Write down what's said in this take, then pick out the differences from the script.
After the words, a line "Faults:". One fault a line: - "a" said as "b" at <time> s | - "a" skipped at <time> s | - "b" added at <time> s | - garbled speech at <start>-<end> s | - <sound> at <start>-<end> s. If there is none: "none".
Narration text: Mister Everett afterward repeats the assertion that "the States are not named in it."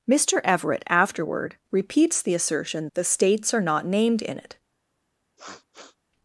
Mister Everett afterward repeats the assertion "the States are not named in it."
Faults:
- "that" skipped at 2.9 s
- sniff at 5.4-6.0 s